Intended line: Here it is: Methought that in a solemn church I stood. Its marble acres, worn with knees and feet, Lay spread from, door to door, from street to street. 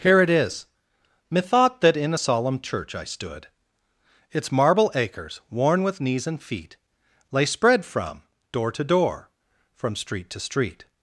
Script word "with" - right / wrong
right